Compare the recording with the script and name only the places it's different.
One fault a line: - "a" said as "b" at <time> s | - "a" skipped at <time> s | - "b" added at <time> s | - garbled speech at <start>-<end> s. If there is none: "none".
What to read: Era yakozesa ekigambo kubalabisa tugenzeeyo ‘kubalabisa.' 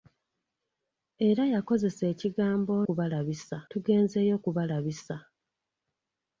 none